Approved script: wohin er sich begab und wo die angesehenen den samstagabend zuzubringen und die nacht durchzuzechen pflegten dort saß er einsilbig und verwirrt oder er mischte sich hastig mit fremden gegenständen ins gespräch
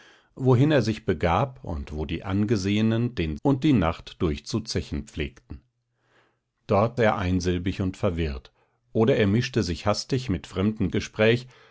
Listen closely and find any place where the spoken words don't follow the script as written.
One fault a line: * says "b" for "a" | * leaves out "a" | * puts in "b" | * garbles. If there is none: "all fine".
* leaves out "samstagabend zuzubringen"
* leaves out "saß"
* leaves out "gegenständen ins"